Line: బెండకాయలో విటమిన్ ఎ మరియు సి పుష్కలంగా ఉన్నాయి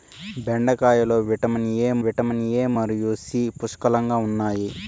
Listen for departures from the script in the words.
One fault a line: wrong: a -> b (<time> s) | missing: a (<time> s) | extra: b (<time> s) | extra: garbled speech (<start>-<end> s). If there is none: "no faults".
extra: విటమిన్ ఎ (2.0 s)